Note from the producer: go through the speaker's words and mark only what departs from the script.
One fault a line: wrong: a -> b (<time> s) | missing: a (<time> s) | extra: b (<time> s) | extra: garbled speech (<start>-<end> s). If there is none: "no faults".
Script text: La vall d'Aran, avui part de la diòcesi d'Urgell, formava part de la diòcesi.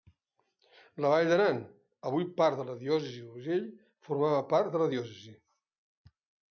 no faults